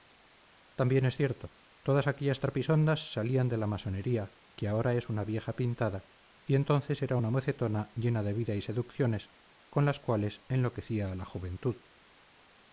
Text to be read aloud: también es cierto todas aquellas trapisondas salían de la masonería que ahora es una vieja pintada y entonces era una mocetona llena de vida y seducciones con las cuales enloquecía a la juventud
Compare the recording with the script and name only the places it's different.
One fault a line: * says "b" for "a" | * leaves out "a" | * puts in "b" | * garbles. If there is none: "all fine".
all fine